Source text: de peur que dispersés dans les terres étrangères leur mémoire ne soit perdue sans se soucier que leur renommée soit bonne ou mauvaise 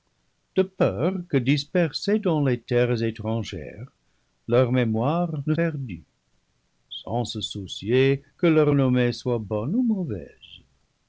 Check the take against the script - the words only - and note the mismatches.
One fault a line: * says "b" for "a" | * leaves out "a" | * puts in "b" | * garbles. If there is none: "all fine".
* leaves out "soit"